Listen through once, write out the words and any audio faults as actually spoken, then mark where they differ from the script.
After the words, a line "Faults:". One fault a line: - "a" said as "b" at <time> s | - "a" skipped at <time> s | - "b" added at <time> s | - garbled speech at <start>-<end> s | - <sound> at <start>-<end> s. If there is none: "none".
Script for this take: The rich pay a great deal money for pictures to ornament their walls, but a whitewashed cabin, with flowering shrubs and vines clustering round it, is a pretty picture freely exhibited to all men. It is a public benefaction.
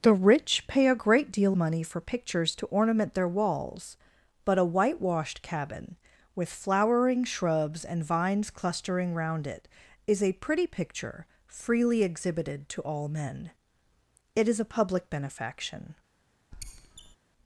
The rich pay a great deal money for pictures to ornament their walls, but a whitewashed cabin, with flowering shrubs and vines clustering round it, is a pretty picture freely exhibited to all men. It is a public benefaction.
Faults:
- squeak at 16.5-17.2 s